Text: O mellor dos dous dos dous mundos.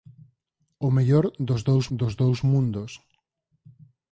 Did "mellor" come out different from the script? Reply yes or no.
no